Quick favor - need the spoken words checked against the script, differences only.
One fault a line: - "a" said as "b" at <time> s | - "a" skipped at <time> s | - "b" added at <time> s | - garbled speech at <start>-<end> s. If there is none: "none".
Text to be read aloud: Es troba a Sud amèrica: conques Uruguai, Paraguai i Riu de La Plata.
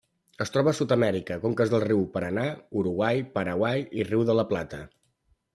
- "dels rius Paranà" added at 1.7 s